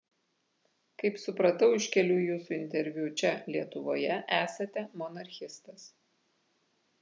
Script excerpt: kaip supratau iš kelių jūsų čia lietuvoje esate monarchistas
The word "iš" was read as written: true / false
true